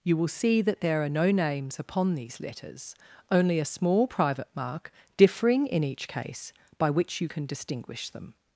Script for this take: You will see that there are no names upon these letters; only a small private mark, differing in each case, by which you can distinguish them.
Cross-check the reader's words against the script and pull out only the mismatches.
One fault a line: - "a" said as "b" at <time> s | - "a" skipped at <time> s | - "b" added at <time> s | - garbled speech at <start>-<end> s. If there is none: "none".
none